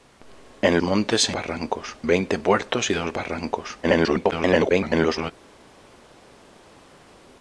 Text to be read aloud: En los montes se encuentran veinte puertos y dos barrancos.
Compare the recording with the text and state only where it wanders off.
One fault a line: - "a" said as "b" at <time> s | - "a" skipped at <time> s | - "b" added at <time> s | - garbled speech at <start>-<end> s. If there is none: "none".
- "los" skipped at 0.8 s
- "encuentran" said as "barrancos" at 1.3 s
- garbled speech at 3.8-5.3 s